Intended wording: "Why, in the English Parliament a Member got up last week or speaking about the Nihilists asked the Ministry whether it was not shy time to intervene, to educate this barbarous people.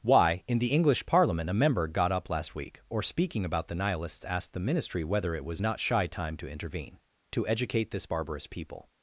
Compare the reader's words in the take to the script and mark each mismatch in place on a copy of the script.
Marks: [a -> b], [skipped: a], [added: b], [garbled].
"Why, in the English Parliament a Member got up last week or speaking about the Nihilists asked the Ministry whether it was not shy time to intervene, to educate this barbarous people.